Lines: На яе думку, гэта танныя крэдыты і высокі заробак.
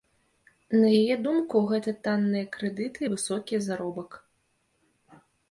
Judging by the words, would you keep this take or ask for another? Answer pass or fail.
pass